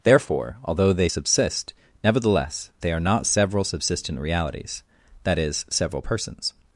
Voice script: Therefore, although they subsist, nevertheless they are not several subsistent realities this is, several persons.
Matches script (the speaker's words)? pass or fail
fail